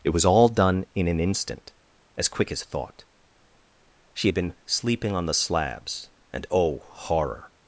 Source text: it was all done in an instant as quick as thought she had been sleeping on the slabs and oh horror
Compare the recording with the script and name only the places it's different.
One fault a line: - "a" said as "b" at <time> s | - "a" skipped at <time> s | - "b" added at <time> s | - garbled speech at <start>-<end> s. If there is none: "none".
none